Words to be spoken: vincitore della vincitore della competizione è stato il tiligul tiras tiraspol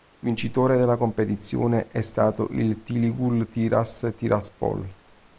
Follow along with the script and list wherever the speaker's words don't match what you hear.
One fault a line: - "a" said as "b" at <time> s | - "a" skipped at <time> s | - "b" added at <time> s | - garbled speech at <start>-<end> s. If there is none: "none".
- "vincitore della" skipped at 1.0 s